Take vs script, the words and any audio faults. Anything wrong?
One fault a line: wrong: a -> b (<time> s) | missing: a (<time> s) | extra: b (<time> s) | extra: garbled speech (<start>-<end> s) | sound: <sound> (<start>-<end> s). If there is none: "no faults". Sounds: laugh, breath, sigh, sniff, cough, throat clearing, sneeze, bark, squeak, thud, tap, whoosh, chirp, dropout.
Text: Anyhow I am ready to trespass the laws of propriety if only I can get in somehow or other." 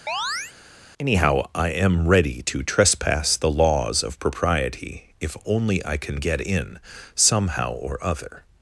sound: chirp (0.1-0.5 s)